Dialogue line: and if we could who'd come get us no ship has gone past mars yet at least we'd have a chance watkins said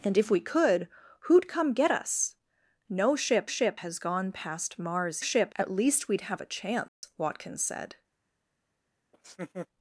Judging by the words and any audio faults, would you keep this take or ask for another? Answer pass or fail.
fail